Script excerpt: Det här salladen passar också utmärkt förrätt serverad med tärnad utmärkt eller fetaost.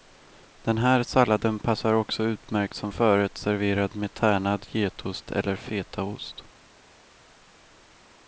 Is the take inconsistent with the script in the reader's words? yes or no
yes